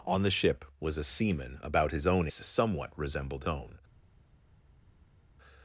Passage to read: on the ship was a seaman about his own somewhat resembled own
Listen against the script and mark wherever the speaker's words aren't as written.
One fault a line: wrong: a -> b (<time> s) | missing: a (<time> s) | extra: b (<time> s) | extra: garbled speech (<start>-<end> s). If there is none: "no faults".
no faults